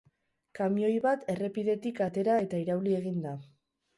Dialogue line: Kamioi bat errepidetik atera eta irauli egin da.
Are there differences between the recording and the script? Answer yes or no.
no